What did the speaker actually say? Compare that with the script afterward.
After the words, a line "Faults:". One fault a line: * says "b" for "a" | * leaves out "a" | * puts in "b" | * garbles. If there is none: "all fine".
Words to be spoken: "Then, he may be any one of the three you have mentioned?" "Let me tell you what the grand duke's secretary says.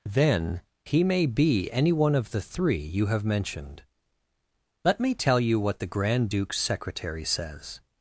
"Then, he may be any one of the three you have mentioned?" "Let me tell you what the grand duke's secretary says.
Faults:
all fine